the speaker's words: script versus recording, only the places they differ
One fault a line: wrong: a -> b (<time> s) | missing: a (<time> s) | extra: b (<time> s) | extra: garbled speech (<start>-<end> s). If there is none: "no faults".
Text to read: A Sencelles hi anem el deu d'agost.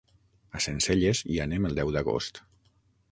no faults